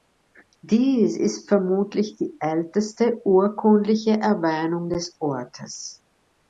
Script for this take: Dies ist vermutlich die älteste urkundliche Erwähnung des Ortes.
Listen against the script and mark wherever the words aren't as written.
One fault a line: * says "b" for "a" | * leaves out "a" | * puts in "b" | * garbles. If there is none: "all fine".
all fine